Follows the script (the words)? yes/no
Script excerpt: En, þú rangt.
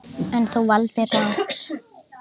no